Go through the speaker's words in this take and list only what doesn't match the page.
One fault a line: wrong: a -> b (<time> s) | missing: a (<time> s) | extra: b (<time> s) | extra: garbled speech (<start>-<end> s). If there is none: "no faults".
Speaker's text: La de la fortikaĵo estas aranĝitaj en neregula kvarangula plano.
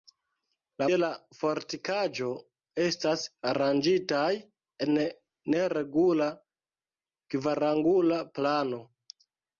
no faults